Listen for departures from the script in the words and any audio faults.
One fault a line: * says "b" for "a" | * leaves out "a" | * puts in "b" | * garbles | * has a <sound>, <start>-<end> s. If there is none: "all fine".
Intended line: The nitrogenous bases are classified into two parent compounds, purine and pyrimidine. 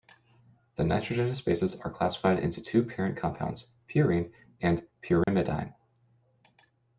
* has a dropout, 5.2-5.3 s